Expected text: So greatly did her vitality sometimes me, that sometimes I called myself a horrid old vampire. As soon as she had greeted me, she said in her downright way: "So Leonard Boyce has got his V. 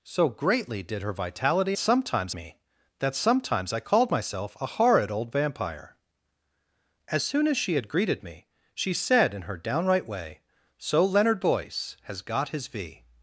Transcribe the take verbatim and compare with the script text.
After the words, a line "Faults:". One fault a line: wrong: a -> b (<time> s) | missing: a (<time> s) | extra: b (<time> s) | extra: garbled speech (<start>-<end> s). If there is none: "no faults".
So greatly did her vitality sometimes me, that sometimes I called myself a horrid old vampire. As soon as she had greeted me, she said in her downright way: "So Leonard Boyce has got his V.
Faults:
no faults